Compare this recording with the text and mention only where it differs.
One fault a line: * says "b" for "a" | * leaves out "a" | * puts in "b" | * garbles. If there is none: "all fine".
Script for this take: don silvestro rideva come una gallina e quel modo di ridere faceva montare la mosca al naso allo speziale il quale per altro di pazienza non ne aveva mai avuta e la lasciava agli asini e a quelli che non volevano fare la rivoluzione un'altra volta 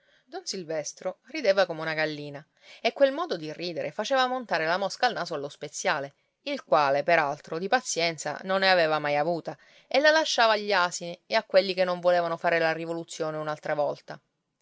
all fine